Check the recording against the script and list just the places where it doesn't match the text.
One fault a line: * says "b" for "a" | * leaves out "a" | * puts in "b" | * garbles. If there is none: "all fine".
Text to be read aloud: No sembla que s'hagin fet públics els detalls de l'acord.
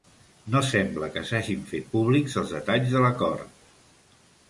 all fine